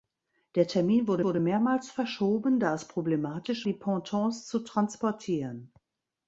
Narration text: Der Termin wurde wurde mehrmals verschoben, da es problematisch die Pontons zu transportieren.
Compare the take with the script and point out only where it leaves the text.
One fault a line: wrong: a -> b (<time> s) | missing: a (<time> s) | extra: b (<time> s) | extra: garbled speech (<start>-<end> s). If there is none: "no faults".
no faults